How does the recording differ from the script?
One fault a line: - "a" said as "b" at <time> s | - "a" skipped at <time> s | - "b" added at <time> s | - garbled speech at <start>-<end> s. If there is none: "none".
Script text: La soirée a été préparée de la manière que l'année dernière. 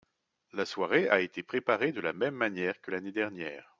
- "même" added at 2.1 s